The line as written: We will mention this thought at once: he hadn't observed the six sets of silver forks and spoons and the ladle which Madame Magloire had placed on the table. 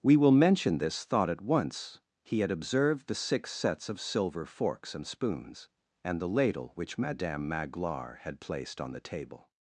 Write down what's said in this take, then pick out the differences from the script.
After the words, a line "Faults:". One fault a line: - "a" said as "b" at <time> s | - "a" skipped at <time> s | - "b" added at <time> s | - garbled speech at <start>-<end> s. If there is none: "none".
We will mention this thought at once: he had observed the six sets of silver forks and spoons and the ladle which Madame Magloire had placed on the table.
Faults:
- "hadn't" said as "had" at 2.4 s